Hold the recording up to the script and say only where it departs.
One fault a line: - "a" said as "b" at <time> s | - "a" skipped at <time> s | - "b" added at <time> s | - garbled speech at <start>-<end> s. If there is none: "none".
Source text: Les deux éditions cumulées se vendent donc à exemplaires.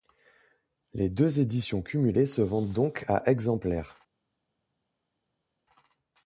none